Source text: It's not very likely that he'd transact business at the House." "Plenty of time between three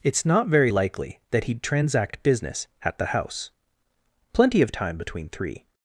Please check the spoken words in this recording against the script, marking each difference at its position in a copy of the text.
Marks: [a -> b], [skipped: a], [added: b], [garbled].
It's not very likely that he'd transact business at the House." "Plenty of time between three